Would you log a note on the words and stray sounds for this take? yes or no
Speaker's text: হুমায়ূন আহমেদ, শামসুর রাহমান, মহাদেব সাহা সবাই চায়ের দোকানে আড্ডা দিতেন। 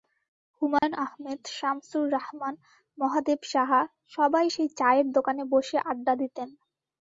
yes